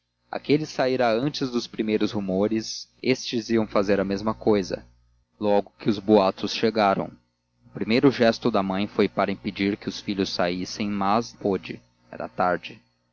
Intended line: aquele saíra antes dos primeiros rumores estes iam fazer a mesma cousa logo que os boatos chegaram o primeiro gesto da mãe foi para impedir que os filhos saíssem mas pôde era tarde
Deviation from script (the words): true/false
false